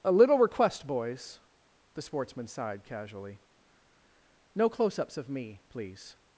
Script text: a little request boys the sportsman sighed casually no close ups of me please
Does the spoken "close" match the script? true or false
true